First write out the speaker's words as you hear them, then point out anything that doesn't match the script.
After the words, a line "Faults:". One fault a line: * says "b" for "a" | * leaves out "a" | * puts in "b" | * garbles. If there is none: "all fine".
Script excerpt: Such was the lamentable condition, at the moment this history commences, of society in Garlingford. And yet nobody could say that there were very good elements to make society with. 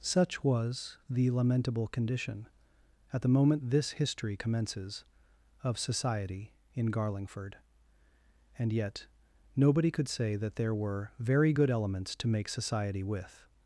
Such was the lamentable condition, at the moment this history commences, of society in Garlingford. And yet nobody could say that there were very good elements to make society with.
Faults:
all fine